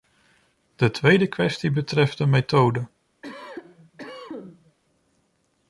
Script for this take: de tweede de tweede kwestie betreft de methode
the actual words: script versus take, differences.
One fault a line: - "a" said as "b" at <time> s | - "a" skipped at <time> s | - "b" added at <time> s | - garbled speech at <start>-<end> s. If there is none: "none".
- "de tweede" skipped at 1.3 s